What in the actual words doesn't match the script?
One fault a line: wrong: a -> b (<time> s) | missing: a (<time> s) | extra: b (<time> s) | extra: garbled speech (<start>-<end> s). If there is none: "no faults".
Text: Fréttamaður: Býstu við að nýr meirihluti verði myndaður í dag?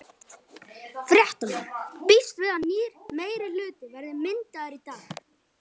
no faults